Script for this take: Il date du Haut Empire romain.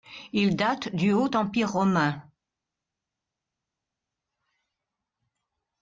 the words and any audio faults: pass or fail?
pass